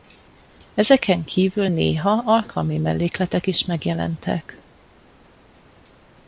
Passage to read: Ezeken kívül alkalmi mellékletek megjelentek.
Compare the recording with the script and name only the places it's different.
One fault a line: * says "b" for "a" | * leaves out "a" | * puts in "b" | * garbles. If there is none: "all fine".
* puts in "néha"
* puts in "is"